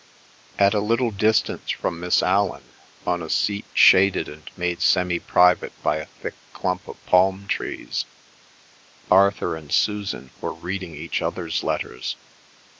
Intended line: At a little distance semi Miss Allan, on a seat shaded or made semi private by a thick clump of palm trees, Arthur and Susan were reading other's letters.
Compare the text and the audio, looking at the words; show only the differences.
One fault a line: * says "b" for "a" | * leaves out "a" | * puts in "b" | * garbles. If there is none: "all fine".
* says "from" for "semi"
* says "and" for "or"
* puts in "each"